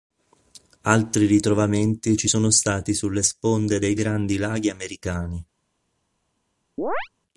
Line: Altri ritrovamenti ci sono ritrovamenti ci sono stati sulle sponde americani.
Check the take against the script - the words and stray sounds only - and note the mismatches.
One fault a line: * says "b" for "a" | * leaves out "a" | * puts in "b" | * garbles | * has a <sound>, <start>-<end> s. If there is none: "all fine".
* says "stati sulle sponde dei Grandi Laghi" for "ritrovamenti ci sono stati sulle sponde"
* has a chirp, 6.8-7.1 s